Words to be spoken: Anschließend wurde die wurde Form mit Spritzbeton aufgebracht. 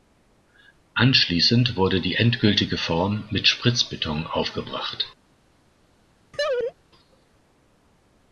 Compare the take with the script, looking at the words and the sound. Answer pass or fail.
fail